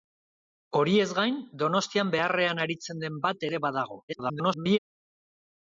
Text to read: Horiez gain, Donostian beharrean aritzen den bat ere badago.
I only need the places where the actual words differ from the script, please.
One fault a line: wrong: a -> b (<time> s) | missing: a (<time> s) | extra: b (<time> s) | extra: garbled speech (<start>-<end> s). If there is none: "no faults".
extra: garbled speech (4.1-4.8 s)